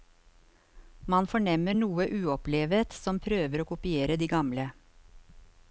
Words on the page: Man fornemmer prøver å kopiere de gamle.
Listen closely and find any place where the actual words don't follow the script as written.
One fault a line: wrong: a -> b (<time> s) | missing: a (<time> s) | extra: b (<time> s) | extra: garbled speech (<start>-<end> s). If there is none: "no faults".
extra: noe uopplevet som (1.8 s)